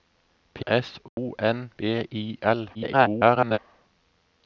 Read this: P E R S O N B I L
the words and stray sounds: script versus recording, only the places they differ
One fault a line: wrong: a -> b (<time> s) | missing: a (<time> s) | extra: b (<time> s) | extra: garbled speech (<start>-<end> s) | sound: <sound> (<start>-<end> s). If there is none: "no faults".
missing: E R (0.7 s)
sound: dropout (1.1-1.2 s)
extra: garbled speech (2.7-3.6 s)